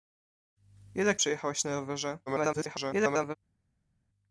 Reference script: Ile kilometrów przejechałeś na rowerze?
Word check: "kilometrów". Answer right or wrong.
wrong